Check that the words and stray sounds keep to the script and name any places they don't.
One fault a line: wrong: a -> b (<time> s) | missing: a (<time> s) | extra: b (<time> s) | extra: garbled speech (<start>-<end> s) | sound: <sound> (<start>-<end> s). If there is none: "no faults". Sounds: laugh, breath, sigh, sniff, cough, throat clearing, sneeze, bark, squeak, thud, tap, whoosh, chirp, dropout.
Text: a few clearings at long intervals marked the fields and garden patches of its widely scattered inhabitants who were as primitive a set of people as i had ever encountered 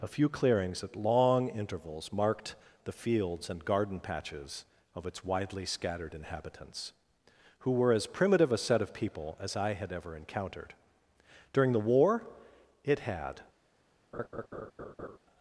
extra: during the war it had (11.5 s)
sound: laugh (14.1-15.2 s)